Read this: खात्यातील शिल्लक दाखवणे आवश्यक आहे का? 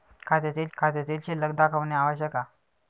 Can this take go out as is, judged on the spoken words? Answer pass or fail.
fail